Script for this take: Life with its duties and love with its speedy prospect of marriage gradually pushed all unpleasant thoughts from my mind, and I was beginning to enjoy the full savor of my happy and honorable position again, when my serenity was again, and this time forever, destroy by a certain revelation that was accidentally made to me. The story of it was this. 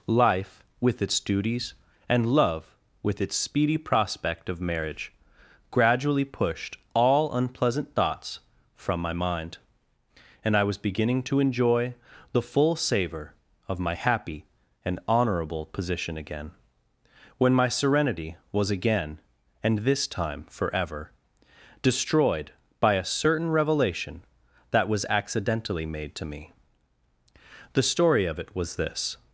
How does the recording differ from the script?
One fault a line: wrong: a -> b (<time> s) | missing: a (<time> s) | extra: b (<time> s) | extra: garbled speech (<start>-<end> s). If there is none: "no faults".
wrong: destroy -> destroyed (21.8 s)